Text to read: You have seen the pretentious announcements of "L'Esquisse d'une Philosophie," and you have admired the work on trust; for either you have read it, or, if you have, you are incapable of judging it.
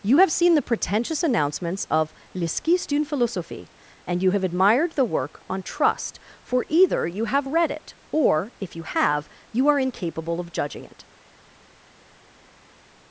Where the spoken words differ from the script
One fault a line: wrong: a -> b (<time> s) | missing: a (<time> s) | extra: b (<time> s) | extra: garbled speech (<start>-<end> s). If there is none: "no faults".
no faults